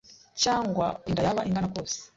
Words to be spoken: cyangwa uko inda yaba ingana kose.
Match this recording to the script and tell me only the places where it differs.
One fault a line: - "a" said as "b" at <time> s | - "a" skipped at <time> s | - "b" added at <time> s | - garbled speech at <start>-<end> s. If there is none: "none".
- "uko" skipped at 0.9 s